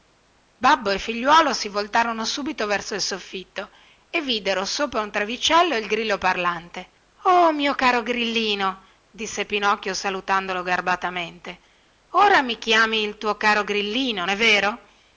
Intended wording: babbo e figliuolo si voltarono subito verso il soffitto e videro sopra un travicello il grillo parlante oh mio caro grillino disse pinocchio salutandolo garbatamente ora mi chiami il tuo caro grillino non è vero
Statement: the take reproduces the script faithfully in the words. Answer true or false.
false